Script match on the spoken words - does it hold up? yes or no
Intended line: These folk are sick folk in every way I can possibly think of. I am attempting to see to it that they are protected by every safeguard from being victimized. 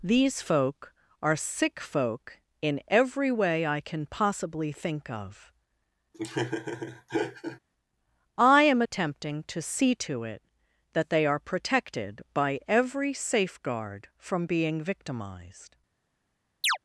yes